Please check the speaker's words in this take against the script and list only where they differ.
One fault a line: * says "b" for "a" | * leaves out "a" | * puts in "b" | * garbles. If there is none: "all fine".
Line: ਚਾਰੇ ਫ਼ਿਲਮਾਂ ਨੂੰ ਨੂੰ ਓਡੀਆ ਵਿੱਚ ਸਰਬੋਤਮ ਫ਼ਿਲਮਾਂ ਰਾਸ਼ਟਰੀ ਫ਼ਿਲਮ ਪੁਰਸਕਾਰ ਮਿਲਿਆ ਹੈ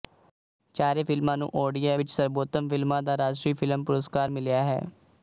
* leaves out "ਨੂੰ"
* puts in "ਦਾ"